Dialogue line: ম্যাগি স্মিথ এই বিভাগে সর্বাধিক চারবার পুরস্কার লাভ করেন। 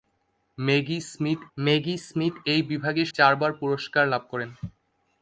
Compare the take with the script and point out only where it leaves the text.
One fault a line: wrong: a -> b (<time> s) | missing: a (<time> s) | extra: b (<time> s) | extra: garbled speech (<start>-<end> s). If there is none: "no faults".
extra: ম্যাগি স্মিথ (1.6 s)
missing: সর্বাধিক (3.0 s)